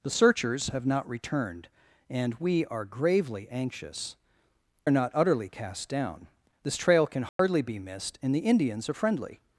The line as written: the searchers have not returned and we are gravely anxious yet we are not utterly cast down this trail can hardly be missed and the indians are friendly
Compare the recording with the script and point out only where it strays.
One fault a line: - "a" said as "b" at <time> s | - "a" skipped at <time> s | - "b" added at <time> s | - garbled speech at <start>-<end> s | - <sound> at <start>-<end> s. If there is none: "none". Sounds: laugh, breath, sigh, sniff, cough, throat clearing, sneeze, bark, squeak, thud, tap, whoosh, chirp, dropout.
- "yet we" skipped at 4.2 s
- dropout at 7.3-7.4 s